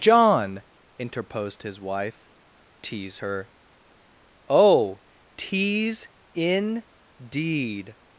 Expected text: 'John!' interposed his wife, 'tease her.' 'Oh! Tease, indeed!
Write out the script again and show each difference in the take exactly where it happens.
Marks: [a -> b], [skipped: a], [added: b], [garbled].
'John!' interposed his wife, 'tease her.' 'Oh! Tease, indeed!